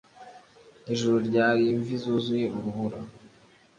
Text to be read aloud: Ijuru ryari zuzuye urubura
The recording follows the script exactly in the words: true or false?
false